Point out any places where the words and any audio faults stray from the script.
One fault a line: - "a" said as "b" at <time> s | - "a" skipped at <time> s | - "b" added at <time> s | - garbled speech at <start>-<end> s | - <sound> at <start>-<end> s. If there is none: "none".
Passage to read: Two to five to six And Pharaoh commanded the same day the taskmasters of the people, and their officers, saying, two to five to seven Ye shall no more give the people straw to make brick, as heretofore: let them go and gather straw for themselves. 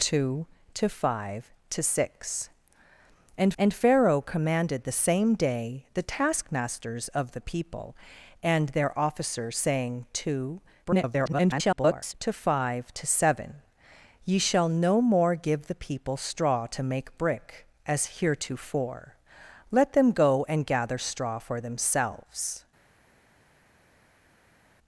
- "And" added at 3.6 s
- garbled speech at 10.8-12.1 s